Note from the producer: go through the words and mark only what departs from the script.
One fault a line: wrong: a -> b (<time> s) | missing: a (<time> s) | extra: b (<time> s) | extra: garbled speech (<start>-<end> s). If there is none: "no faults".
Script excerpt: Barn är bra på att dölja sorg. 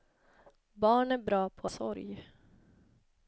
missing: att dölja (1.7 s)